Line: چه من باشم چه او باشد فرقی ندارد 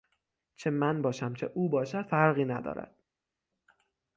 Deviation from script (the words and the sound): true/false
false